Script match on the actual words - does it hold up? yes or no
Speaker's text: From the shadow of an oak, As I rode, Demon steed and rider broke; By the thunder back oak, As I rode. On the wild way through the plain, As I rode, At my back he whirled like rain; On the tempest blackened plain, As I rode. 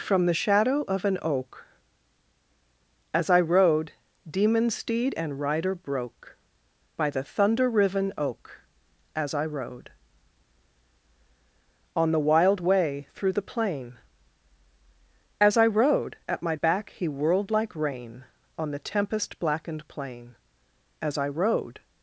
no